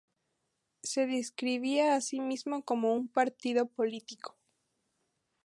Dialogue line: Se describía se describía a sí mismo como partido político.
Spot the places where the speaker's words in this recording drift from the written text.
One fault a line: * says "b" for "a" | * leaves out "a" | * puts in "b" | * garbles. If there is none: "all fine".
* leaves out "se describía"
* puts in "un"